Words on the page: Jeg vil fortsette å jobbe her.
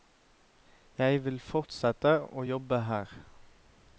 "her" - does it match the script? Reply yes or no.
yes